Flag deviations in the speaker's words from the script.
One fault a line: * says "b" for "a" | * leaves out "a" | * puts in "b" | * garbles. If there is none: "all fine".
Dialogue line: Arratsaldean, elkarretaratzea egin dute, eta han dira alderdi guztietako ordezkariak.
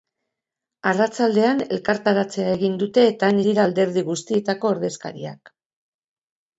all fine